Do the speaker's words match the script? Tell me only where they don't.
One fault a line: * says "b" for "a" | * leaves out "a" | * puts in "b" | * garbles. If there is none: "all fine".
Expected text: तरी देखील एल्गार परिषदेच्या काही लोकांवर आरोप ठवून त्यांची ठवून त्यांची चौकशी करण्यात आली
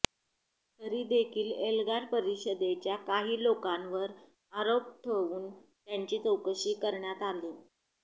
* leaves out "ठवून त्यांची"